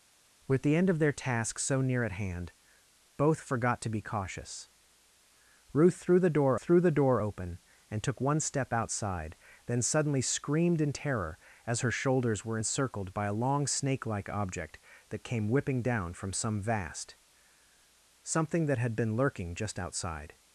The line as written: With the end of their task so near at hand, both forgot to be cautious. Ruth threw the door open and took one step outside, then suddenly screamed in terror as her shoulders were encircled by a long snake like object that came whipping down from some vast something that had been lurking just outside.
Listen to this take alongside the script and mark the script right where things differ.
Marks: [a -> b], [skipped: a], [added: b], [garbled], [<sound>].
With the end of their task so near at hand, both forgot to be cautious. Ruth threw the door [added: threw the door] open and took one step outside, then suddenly screamed in terror as her shoulders were encircled by a long snake like object that came whipping down from some vast something that had been lurking just outside.